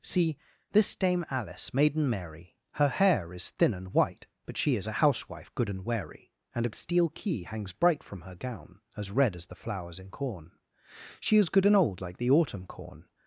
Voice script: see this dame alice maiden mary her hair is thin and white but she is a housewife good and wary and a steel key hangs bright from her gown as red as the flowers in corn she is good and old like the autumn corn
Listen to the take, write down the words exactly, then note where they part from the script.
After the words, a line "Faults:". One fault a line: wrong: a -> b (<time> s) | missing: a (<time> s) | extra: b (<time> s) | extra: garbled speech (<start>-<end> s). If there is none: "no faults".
see this dame alice maiden mary her hair is thin and white but she is a housewife good and wary and a steel key hangs bright from her gown as red as the flowers in corn she is good and old like the autumn corn
Faults:
no faults